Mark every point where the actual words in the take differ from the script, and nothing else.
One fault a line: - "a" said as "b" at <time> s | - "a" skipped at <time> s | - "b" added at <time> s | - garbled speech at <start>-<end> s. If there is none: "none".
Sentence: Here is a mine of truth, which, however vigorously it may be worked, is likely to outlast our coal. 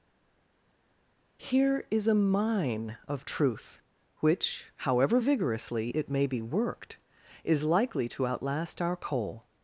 none